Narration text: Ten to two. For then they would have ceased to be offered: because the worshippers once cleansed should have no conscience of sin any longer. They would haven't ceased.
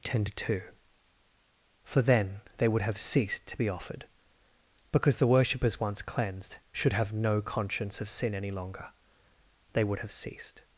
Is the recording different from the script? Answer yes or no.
yes